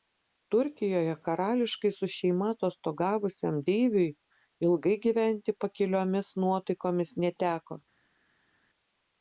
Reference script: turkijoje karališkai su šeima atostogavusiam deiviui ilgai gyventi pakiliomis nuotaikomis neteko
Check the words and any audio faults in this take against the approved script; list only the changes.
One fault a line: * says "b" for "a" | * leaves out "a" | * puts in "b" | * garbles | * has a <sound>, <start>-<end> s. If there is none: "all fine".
all fine